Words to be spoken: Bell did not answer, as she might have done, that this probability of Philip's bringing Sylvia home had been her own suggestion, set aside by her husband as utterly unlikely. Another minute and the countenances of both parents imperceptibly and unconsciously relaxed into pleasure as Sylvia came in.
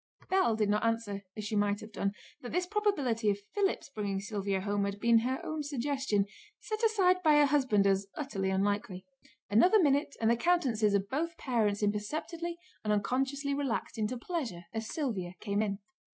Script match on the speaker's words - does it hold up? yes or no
yes